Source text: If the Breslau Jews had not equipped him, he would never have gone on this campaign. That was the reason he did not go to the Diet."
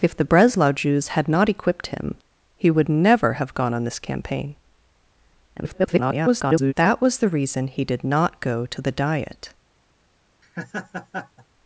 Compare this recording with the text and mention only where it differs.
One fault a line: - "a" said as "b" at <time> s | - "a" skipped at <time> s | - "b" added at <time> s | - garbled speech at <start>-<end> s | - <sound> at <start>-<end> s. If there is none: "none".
- garbled speech at 5.6-6.7 s
- laugh at 10.4-11.5 s